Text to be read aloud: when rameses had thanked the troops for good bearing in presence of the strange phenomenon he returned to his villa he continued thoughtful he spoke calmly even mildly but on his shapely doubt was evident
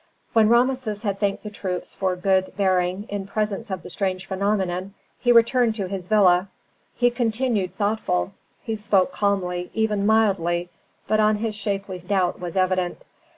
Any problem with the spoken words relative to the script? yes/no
no